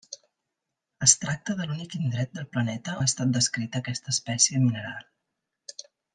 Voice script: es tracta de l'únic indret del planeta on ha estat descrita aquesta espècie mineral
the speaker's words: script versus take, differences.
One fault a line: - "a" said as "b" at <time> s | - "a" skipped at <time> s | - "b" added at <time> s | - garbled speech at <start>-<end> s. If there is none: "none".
- "on" skipped at 2.9 s